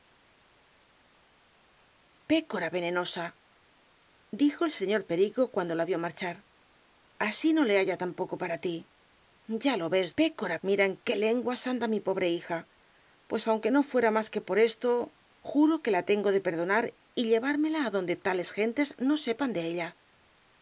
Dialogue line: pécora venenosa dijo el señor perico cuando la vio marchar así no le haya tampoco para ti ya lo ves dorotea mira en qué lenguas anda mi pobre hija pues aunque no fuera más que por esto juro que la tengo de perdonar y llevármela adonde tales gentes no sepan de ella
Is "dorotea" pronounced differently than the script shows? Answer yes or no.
yes